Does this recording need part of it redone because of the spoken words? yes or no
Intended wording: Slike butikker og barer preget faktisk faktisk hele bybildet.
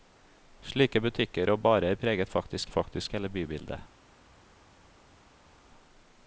no